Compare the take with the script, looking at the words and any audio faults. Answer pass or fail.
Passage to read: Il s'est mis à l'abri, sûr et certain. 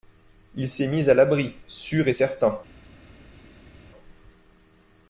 pass